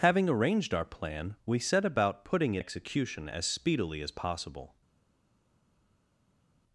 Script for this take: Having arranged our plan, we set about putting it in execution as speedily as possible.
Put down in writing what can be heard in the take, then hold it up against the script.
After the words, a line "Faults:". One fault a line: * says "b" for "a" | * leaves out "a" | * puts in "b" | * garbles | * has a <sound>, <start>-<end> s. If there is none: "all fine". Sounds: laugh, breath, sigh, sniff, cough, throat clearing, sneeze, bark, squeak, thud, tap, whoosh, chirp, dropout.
Having arranged our plan, we set about putting it execution as speedily as possible.
Faults:
* leaves out "in"